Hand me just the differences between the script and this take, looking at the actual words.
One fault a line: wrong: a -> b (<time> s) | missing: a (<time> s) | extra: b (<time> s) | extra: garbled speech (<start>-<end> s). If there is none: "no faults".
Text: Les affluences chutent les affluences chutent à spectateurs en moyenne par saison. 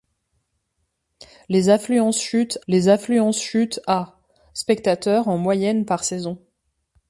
no faults